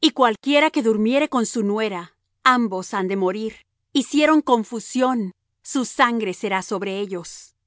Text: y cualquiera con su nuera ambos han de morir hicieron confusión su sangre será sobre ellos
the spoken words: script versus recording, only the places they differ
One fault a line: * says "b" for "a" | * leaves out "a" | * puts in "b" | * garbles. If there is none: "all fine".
* puts in "que durmiere"